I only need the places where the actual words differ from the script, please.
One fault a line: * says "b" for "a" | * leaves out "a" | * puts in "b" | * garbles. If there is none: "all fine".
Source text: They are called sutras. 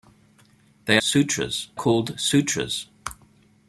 * says "sutras" for "are"